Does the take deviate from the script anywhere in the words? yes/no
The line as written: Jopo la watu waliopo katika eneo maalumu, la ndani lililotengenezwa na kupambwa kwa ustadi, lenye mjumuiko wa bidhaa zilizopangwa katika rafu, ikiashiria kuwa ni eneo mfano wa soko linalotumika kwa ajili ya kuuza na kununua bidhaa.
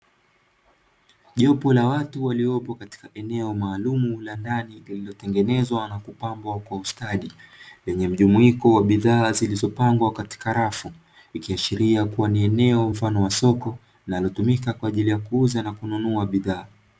no